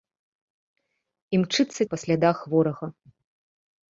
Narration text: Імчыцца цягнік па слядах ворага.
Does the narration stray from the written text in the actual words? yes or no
yes